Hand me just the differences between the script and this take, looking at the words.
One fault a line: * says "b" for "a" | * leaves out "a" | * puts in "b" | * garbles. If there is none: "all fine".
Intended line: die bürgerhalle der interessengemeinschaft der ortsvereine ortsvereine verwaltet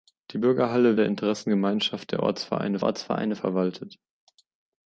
all fine